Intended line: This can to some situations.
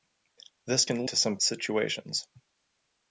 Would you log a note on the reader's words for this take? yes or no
no